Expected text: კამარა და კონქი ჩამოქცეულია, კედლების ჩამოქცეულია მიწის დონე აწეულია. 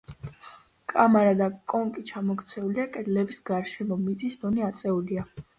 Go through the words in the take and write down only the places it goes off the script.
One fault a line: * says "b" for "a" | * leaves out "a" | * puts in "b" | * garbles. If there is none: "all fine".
* says "გარშემო" for "ჩამოქცეულია"